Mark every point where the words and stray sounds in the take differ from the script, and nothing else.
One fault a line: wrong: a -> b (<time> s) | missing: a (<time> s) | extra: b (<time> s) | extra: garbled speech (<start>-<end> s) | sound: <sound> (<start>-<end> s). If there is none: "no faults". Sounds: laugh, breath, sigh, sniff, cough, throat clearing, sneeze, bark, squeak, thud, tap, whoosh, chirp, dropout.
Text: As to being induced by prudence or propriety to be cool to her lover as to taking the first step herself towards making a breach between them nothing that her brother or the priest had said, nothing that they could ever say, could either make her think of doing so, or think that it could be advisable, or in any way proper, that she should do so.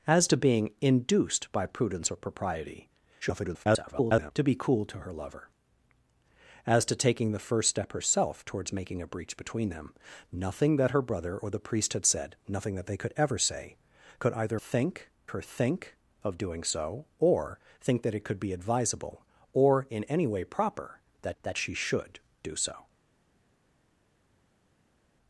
extra: garbled speech (3.2-4.3 s)
wrong: make -> think (14.5 s)
extra: that (21.4 s)